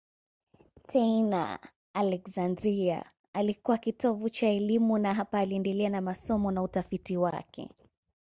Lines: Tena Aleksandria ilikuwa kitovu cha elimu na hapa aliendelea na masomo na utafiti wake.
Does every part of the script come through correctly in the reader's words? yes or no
yes